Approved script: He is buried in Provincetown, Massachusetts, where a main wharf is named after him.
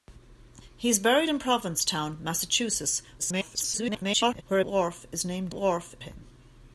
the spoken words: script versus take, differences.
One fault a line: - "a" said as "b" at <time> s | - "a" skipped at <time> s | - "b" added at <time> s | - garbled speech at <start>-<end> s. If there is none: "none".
- garbled speech at 3.2-4.4 s
- "main" skipped at 4.6 s
- "after" said as "wharf" at 5.5 s